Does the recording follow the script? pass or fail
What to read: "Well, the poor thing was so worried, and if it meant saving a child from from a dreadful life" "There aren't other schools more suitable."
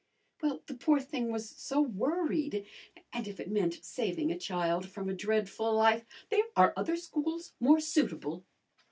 fail